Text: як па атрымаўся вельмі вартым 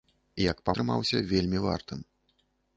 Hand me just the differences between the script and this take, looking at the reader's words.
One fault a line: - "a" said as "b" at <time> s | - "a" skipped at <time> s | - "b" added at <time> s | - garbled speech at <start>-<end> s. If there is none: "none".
none